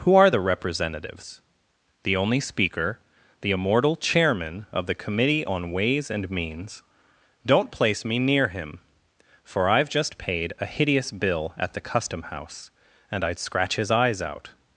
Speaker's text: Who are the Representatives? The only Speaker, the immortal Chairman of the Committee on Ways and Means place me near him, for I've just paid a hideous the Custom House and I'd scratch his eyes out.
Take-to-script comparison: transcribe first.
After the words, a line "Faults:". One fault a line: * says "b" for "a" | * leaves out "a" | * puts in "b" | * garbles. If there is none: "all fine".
Who are the Representatives? The only Speaker, the immortal Chairman of the Committee on Ways and Means don't place me near him, for I've just paid a hideous bill at the Custom House and I'd scratch his eyes out.
Faults:
* puts in "don't"
* puts in "bill at"